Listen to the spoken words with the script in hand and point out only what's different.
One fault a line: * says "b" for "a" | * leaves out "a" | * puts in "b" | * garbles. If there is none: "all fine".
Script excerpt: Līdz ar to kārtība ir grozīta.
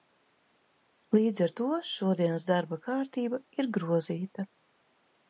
* puts in "šodienas darba"